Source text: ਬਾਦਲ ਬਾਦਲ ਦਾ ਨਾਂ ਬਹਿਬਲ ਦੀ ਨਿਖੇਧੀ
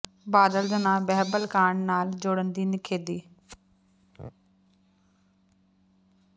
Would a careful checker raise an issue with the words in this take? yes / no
yes